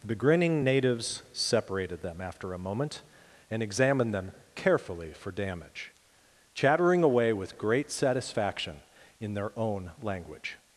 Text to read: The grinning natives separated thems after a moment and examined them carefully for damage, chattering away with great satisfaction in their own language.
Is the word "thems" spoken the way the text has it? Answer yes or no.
no